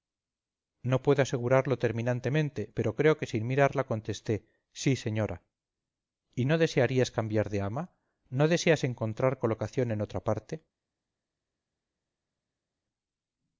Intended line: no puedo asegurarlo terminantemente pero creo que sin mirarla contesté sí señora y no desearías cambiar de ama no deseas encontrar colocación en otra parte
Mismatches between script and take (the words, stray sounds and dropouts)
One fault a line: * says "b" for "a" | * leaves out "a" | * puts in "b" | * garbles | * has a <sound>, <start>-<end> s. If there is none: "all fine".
all fine